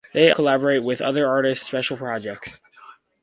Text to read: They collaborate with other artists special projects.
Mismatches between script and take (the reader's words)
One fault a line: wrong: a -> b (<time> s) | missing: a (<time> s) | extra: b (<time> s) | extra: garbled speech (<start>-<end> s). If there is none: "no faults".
no faults